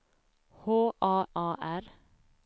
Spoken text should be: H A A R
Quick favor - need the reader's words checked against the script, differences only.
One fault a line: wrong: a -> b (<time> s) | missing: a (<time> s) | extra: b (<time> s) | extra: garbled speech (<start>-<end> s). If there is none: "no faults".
no faults